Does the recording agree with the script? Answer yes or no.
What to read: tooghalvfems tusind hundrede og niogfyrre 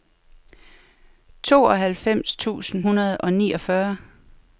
yes